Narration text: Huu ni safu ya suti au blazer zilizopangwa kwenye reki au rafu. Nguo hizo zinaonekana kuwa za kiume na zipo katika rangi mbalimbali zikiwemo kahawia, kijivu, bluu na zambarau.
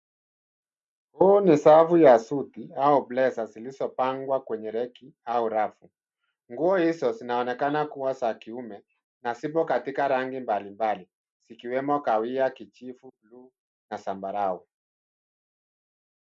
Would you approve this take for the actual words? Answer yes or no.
yes